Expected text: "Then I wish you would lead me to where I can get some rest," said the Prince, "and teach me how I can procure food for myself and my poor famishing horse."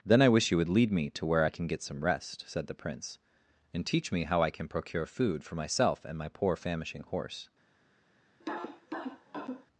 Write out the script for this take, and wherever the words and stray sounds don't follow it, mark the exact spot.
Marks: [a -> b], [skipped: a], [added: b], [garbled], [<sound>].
"Then I wish you would lead me to where I can get some rest," said the Prince, "and teach me how I can procure food for myself and my poor famishing horse." [cough]